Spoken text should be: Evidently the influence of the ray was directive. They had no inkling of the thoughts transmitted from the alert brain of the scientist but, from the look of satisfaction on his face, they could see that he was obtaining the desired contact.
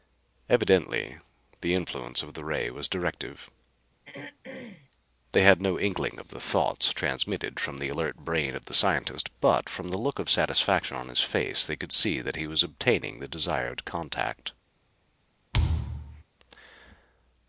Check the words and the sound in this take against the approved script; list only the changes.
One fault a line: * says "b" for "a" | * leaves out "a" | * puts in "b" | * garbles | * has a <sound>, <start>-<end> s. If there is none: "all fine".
* has a throat clearing, 4.0-4.9 s
* has a thud, 15.5-16.2 s